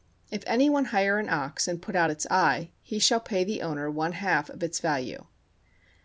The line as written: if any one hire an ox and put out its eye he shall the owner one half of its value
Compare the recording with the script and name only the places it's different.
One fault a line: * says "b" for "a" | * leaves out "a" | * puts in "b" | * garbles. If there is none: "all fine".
* puts in "pay"